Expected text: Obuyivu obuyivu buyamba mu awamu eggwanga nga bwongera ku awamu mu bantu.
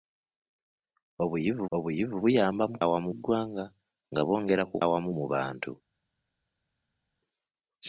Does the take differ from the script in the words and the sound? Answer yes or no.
no